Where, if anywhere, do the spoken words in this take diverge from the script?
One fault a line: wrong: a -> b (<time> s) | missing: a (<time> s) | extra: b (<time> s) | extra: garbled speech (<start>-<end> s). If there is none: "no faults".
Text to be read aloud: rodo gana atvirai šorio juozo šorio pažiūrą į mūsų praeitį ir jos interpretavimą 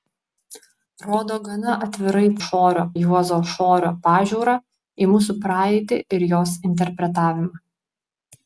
no faults